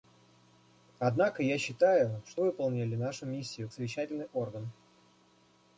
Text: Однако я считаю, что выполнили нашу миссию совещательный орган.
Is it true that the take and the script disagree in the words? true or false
false